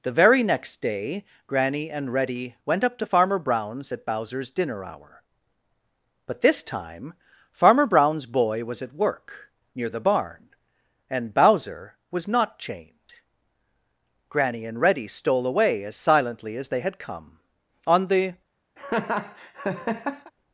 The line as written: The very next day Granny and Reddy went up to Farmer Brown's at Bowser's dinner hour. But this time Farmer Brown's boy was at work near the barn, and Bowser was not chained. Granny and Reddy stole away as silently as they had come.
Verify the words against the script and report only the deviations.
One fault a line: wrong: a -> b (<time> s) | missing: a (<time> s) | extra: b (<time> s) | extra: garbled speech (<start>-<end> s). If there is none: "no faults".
extra: On the (17.9 s)